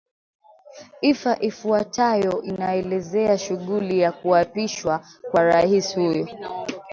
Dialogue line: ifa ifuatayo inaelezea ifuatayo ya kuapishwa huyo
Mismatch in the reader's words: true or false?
true